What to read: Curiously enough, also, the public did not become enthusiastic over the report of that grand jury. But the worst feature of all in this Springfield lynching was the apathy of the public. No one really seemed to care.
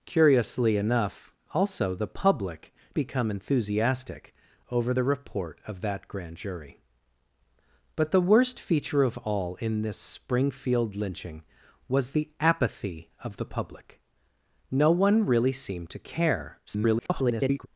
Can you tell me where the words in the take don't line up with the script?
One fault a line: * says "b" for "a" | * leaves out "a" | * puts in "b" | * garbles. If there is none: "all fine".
* leaves out "did not"
* garbles